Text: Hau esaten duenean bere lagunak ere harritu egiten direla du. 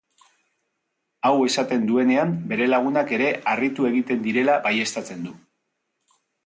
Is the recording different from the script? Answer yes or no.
yes